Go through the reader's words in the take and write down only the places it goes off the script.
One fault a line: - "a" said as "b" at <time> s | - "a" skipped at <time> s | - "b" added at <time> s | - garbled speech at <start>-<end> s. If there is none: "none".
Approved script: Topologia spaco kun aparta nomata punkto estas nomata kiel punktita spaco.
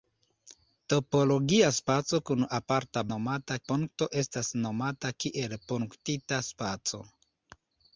none